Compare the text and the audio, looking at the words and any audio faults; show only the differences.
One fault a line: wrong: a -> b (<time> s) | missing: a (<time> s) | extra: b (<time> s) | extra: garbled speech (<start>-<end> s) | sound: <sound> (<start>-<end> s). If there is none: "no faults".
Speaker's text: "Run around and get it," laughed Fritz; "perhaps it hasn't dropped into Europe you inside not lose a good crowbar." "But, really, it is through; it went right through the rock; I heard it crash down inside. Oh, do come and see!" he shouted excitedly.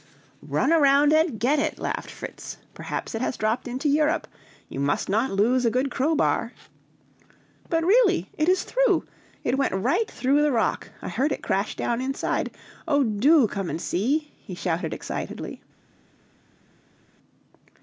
wrong: hasn't -> has (3.2 s)
wrong: inside -> must (4.8 s)